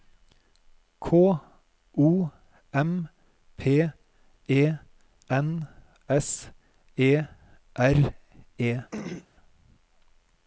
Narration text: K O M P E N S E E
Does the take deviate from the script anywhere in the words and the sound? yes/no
yes